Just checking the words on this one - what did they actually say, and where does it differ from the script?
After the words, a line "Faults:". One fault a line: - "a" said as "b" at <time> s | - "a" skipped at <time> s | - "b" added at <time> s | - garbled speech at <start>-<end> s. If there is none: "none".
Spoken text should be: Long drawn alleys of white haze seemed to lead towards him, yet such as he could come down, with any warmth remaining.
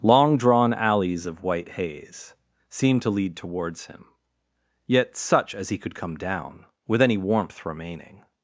Long drawn alleys of white haze seemed to lead towards him, yet such as he could come down, with any warmth remaining.
Faults:
none